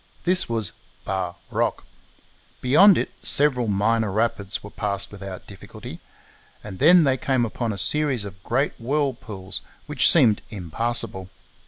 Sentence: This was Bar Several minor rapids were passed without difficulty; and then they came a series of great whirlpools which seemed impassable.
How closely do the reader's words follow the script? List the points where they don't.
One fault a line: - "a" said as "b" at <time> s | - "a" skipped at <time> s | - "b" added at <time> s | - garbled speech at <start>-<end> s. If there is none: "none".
- "Rock Beyond it" added at 1.5 s
- "upon" added at 7.5 s